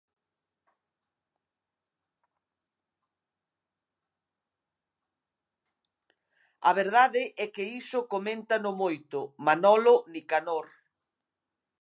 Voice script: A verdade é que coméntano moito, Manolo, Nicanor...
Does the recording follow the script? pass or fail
fail